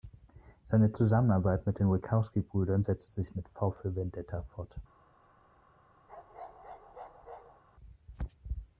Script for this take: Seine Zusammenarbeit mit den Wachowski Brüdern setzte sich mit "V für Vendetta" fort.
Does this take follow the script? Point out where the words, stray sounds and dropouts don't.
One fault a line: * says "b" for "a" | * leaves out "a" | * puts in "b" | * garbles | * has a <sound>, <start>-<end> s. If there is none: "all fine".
* has a bark, 6.1-7.6 s